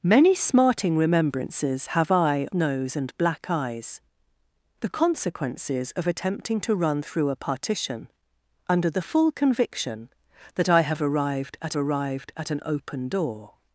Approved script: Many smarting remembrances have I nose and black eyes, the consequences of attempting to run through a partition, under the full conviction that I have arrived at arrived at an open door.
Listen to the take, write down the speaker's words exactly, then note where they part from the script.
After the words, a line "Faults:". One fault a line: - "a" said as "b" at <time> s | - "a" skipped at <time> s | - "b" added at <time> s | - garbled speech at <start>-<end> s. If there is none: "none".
Many smarting remembrances have I nose and black eyes, the consequences of attempting to run through a partition, under the full conviction that I have arrived at arrived at an open door.
Faults:
none